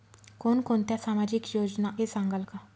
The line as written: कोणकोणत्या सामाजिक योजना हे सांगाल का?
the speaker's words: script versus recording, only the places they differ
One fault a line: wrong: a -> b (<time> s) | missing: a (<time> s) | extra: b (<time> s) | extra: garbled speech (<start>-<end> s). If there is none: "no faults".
no faults